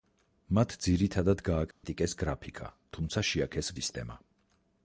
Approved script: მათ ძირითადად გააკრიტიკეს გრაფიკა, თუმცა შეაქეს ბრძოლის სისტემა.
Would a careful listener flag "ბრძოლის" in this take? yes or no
yes